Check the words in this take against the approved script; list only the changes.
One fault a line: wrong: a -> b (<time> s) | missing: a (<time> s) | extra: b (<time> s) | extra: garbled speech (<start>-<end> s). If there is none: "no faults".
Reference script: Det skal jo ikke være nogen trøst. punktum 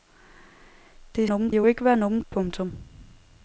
wrong: skal -> nogen (1.2 s)
missing: trøst (2.2 s)